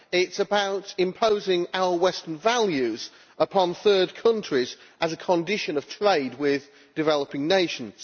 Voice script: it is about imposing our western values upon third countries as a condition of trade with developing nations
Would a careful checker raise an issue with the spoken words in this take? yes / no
no